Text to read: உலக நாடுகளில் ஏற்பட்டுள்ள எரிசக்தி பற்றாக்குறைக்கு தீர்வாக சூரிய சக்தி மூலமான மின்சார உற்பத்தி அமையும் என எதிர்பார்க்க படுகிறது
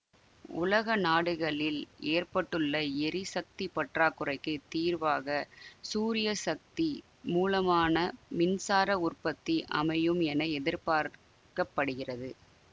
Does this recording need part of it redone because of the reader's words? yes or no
no